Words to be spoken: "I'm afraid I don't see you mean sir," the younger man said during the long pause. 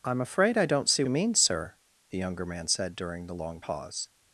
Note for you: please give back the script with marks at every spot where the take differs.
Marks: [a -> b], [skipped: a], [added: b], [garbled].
"I'm afraid I don't see you mean sir," the younger man said during the long pause.